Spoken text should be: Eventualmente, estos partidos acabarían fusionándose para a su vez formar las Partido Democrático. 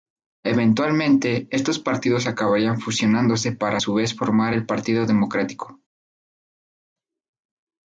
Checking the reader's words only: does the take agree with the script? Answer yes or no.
no